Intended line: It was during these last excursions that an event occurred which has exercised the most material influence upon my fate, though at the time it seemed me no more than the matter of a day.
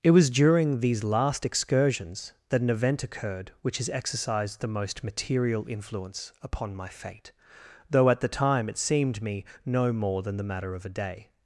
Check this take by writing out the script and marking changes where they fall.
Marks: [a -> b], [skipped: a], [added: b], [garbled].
It was during these last excursions that an event occurred which has exercised the most material influence upon my fate, though at the time it seemed me no more than the matter of a day.